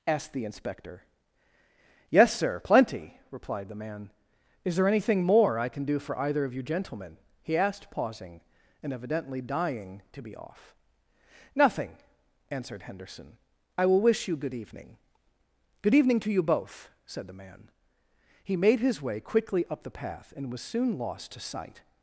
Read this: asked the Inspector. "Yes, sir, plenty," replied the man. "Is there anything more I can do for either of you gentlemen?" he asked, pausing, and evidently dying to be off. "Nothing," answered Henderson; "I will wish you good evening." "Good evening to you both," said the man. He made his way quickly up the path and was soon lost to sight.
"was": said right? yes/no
yes